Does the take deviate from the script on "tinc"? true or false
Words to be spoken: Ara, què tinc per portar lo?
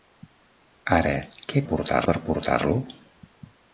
true